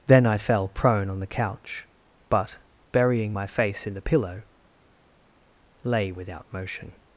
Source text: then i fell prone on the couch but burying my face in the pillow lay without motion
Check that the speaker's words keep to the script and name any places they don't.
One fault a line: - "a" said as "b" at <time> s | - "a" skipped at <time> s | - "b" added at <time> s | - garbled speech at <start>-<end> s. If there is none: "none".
none